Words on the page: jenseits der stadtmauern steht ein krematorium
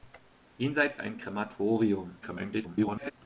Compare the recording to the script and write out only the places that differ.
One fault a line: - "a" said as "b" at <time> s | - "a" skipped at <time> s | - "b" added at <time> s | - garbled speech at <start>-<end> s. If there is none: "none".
- "der stadtmauern steht" skipped at 1.0 s
- garbled speech at 2.2-3.1 s